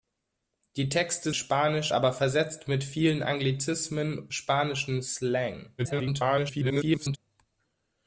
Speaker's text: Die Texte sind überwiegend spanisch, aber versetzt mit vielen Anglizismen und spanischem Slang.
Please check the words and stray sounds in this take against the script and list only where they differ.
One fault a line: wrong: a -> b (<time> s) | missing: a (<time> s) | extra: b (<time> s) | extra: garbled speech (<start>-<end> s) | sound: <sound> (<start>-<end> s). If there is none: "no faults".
missing: sind überwiegend (1.3 s)
missing: und (4.3 s)
extra: garbled speech (5.8-7.2 s)